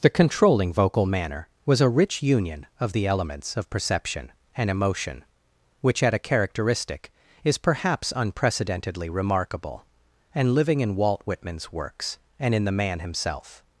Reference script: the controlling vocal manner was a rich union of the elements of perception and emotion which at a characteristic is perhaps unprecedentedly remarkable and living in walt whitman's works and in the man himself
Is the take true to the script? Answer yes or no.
yes